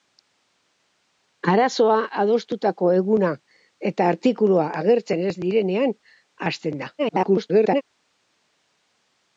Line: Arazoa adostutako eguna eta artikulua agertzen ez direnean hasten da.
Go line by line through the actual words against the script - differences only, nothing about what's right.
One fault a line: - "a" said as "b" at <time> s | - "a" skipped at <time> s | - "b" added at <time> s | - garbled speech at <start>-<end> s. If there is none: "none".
- garbled speech at 7.0-7.8 s